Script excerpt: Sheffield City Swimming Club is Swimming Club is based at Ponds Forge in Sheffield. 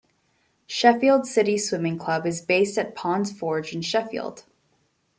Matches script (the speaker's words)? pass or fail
fail